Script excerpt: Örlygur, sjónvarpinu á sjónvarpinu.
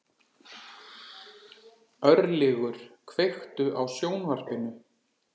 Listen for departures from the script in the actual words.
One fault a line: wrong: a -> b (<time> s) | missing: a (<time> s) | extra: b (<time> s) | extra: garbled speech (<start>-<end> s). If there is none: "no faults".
wrong: sjónvarpinu -> kveiktu (3.1 s)